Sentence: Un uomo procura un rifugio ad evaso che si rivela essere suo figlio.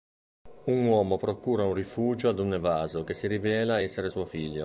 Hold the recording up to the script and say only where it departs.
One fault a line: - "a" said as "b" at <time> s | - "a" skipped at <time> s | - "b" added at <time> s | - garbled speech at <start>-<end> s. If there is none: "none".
- "un" added at 2.4 s